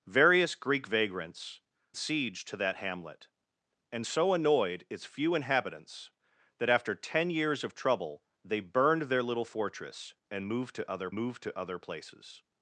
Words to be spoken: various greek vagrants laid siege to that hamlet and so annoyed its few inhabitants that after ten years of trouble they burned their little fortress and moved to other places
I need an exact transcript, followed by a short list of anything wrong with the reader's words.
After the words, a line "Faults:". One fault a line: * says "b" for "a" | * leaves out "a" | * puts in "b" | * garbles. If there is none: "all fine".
various greek vagrants siege to that hamlet and so annoyed its few inhabitants that after ten years of trouble they burned their little fortress and moved to other moved to other places
Faults:
* leaves out "laid"
* puts in "moved to other"